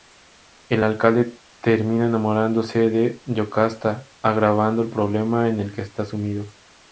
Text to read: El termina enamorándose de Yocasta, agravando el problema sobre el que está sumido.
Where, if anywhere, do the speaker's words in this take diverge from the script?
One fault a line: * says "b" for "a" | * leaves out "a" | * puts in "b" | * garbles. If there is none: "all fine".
* puts in "alcalde"
* says "en" for "sobre"